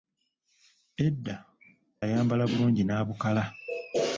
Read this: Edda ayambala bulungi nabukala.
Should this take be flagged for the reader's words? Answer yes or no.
no